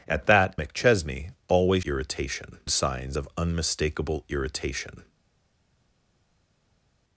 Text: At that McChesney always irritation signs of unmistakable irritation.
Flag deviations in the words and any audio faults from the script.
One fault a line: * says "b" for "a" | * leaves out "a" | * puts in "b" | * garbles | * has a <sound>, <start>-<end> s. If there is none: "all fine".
all fine